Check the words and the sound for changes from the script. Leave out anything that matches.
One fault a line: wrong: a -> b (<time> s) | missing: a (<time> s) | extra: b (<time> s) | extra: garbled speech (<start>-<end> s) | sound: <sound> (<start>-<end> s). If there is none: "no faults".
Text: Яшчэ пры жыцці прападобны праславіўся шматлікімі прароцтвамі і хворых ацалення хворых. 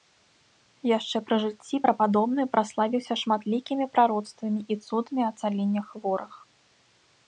wrong: хворых -> цудамі (4.9 s)